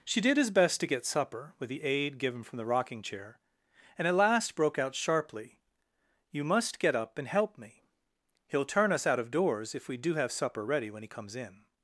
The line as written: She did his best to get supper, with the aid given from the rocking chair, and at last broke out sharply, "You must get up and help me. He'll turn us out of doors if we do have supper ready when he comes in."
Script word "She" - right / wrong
right